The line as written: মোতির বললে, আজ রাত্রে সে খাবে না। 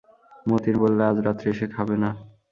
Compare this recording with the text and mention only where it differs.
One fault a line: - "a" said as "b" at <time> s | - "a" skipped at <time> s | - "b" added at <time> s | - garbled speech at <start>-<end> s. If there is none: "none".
none